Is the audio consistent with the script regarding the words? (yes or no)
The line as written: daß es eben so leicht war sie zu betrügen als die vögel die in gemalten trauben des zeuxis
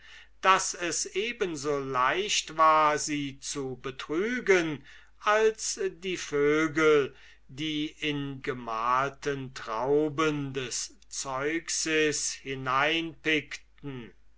yes